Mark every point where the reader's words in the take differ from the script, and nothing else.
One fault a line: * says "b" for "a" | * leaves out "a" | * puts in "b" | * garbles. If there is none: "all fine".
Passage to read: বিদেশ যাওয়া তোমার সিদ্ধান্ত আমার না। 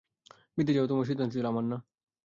* puts in "ছিল"